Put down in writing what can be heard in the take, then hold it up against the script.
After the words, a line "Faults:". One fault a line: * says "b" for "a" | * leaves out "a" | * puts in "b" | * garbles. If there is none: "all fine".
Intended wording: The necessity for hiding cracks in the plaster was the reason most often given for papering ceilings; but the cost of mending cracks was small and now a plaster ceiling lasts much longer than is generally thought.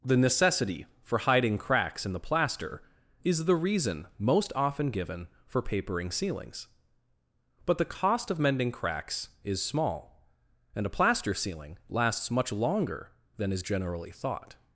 The necessity for hiding cracks in the plaster is the reason most often given for papering ceilings; but the cost of mending cracks is small and a plaster ceiling lasts much longer than is generally thought.
Faults:
* says "is" for "was"
* says "is" for "was"
* leaves out "now"